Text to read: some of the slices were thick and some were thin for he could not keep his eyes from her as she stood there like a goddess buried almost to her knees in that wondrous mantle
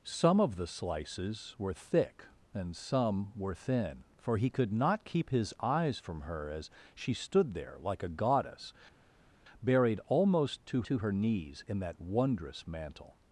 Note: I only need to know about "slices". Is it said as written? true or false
true